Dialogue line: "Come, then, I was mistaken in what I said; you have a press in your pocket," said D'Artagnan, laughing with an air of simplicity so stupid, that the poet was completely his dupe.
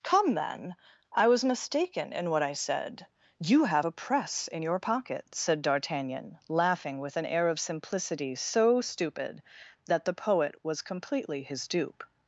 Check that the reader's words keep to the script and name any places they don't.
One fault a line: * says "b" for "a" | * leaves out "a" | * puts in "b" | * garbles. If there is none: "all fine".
all fine